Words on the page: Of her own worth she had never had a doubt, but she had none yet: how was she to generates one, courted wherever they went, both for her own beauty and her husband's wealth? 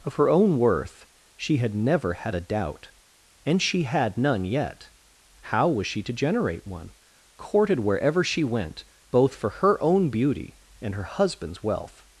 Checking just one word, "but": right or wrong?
wrong